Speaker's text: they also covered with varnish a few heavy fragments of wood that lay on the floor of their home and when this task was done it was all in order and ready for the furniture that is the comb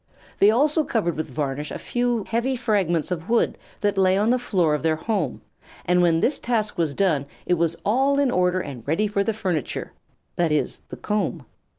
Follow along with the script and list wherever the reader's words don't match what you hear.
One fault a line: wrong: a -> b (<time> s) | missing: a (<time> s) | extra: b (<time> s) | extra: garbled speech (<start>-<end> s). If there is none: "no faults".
no faults